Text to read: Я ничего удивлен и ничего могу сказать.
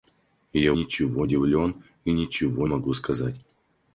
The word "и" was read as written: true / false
true